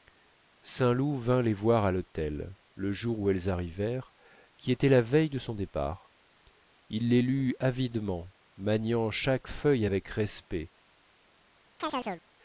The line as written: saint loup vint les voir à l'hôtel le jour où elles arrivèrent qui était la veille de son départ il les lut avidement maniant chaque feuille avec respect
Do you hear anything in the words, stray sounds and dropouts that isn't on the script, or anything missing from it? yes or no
yes